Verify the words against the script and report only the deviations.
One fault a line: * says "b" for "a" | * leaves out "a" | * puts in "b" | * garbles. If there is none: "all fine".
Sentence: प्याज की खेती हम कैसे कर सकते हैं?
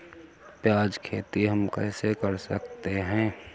* leaves out "की"